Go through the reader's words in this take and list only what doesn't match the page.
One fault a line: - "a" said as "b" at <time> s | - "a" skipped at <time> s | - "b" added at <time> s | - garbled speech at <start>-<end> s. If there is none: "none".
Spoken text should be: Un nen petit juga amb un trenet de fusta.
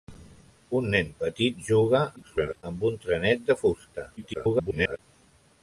- garbled speech at 2.2-2.6 s
- garbled speech at 4.2-5.0 s